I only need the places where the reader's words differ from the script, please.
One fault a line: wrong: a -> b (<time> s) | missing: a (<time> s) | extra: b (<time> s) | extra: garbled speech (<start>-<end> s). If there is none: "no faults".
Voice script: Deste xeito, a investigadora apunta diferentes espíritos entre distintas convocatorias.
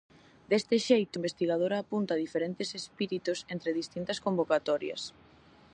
missing: a (1.2 s)